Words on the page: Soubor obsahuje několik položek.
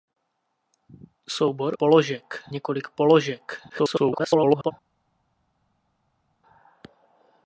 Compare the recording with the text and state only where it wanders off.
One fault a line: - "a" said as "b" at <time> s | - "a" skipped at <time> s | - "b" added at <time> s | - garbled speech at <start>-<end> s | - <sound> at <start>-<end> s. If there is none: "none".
- "obsahuje" said as "položek" at 1.7 s
- garbled speech at 3.7-4.7 s